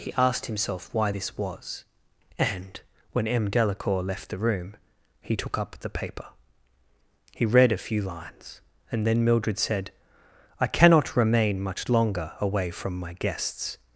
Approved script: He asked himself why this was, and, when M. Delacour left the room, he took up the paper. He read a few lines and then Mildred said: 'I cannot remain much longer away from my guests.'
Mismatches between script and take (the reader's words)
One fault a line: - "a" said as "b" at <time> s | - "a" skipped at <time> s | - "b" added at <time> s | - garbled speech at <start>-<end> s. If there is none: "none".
none